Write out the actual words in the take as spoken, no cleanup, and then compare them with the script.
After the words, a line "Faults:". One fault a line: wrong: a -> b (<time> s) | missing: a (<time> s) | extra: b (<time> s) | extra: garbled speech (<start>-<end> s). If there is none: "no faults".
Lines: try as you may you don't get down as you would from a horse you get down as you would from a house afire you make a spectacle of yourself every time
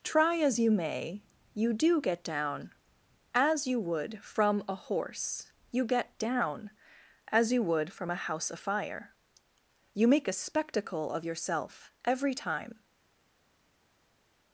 try as you may you do get down as you would from a horse you get down as you would from a house afire you make a spectacle of yourself every time
Faults:
wrong: don't -> do (1.7 s)